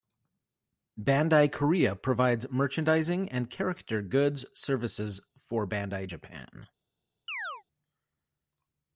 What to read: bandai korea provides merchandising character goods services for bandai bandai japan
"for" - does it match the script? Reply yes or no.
yes